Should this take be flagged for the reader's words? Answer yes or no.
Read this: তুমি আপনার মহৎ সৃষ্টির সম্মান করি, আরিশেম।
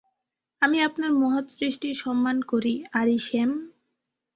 yes